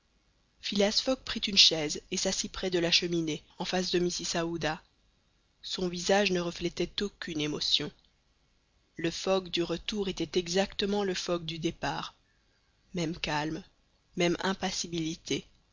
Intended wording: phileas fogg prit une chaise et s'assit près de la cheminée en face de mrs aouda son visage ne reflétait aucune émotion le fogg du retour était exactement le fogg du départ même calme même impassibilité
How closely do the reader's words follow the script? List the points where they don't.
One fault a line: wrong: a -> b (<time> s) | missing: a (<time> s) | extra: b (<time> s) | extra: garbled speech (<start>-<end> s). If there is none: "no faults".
no faults